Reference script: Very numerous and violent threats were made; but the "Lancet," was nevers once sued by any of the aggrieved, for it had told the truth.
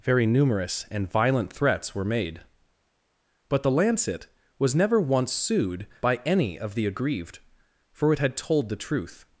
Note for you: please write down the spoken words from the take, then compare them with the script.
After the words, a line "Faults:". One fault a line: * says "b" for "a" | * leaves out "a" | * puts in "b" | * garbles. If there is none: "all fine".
Very numerous and violent threats were made; but the "Lancet," was never once sued by any of the aggrieved, for it had told the truth.
Faults:
* says "never" for "nevers"